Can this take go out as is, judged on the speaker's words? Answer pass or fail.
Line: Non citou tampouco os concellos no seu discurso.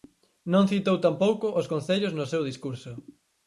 pass